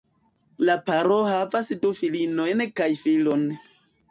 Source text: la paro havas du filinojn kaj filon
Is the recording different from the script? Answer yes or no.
no